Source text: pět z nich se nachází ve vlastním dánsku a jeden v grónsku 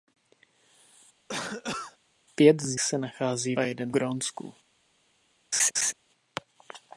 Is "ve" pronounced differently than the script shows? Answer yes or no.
yes